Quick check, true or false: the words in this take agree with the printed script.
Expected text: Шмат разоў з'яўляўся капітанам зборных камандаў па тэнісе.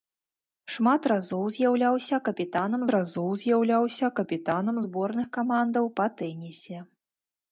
false